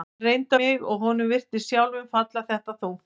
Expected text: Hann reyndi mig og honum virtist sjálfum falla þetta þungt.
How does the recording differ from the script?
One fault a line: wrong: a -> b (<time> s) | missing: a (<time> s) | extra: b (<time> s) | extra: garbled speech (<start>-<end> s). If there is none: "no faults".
no faults